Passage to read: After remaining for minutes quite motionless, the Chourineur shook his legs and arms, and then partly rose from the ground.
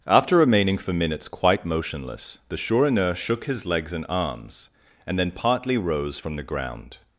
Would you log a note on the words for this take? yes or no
no